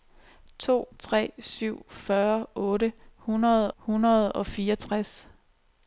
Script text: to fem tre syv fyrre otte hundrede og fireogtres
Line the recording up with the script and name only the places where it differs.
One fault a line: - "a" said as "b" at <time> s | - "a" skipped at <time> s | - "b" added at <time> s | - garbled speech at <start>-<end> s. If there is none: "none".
- "fem" skipped at 0.9 s
- "hundrede" added at 3.8 s